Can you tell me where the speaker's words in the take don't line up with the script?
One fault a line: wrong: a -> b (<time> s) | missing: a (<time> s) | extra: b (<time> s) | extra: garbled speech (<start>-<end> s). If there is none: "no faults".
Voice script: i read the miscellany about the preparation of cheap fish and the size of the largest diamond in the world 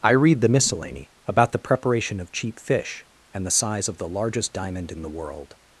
no faults